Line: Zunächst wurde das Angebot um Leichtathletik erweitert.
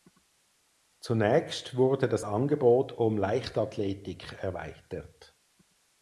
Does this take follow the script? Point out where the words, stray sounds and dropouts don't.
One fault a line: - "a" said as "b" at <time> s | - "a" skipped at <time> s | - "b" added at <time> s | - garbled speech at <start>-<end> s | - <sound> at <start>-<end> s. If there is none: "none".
none